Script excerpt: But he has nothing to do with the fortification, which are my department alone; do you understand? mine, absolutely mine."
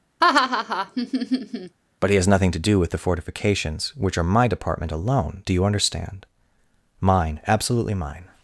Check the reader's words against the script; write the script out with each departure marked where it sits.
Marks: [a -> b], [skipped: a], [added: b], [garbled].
But he has nothing to do with the [fortification, -> fortifications] which are my department alone; do you understand? mine, absolutely mine."